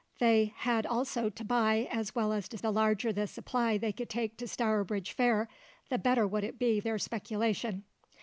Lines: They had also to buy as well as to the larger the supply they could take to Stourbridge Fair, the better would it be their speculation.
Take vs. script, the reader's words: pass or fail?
pass